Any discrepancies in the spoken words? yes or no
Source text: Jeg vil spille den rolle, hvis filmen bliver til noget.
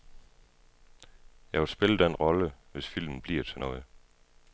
no